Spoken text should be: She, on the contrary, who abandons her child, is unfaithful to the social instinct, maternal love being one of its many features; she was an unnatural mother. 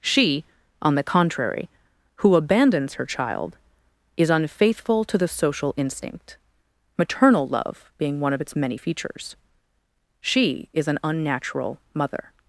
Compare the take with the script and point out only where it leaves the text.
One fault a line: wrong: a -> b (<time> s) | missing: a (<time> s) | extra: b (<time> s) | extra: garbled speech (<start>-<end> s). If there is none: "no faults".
wrong: was -> is (10.7 s)